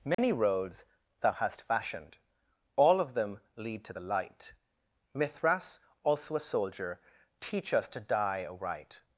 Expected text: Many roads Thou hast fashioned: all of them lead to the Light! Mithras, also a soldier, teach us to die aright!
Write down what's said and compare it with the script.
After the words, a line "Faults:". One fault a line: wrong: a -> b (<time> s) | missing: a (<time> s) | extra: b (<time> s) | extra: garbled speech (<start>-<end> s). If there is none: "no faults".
Many roads Thou hast fashioned: all of them lead to the Light! Mithras, also a soldier, teach us to die aright!
Faults:
no faults